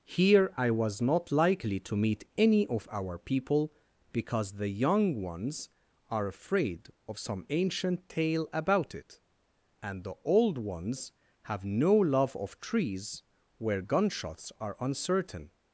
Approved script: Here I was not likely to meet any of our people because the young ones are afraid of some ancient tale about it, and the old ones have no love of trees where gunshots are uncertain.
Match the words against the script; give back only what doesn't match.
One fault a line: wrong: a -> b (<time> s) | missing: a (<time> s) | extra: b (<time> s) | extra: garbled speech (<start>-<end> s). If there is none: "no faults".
no faults